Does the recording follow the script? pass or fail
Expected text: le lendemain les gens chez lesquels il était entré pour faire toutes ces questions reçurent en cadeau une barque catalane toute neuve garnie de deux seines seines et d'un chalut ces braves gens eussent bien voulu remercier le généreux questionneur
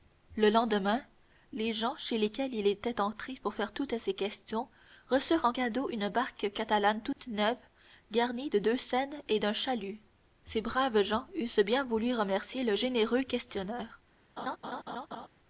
fail